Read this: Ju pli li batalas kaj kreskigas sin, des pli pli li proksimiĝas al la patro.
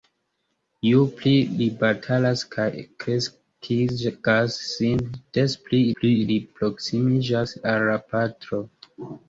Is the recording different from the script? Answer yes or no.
no